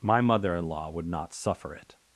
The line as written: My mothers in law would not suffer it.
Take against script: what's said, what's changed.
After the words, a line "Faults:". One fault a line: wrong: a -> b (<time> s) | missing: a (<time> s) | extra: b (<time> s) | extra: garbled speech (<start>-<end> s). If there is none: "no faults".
My mother in law would not suffer it.
Faults:
wrong: mothers -> mother (0.2 s)